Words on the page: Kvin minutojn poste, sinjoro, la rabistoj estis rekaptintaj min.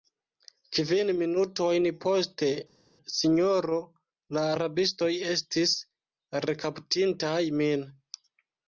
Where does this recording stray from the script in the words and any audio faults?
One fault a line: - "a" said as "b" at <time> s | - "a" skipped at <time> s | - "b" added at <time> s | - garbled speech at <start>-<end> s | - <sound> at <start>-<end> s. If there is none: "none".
none